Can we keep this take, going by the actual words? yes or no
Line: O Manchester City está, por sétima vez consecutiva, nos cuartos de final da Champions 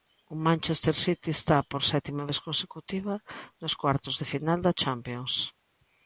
yes